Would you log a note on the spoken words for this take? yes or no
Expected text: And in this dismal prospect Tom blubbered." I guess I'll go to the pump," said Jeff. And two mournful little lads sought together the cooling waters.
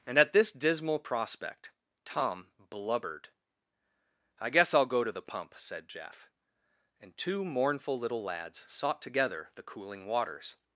yes